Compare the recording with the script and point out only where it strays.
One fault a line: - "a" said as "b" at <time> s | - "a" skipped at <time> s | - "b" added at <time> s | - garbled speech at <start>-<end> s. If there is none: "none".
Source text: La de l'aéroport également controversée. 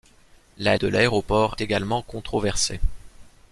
none